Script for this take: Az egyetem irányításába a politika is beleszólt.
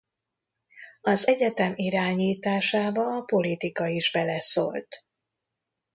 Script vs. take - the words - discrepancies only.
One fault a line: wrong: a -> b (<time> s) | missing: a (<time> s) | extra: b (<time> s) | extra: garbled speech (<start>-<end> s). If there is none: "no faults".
no faults